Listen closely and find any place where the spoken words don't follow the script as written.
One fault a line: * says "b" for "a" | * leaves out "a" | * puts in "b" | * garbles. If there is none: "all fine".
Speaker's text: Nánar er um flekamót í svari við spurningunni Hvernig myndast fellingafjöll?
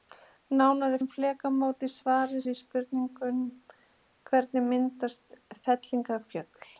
all fine